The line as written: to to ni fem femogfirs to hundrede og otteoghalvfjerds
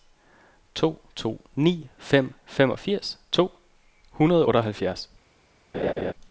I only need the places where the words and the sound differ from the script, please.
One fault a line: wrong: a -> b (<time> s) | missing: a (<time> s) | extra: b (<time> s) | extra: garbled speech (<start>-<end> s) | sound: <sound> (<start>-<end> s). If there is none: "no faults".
sound: laugh (5.7-6.1 s)